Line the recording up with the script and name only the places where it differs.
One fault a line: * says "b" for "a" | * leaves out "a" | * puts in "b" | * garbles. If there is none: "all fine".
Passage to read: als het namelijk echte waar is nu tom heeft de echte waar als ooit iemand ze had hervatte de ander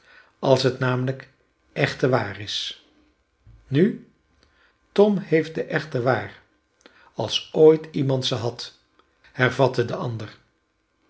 all fine